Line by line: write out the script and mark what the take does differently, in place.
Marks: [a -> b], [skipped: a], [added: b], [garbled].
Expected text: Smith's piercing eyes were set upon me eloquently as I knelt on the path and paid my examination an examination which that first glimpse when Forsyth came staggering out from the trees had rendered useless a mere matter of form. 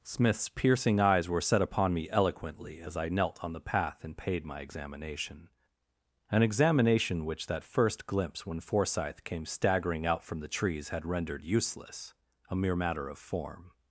Smith's piercing eyes were set upon me eloquently as I knelt on the path and paid my examination an examination which that first glimpse when Forsyth came staggering out from the trees had rendered useless a mere matter of form.